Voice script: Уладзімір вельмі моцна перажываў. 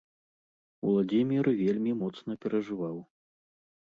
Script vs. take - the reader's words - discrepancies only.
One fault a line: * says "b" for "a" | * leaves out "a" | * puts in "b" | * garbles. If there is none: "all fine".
all fine